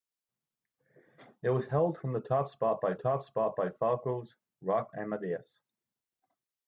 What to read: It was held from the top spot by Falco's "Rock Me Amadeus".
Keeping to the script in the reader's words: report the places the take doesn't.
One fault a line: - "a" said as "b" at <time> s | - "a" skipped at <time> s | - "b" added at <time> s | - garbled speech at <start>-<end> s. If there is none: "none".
- "top spot by" added at 3.0 s
- "Me" skipped at 4.9 s